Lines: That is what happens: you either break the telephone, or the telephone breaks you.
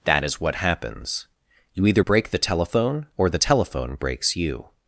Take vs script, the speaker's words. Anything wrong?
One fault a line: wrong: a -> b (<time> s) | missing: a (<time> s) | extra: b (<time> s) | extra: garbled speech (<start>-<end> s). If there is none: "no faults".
no faults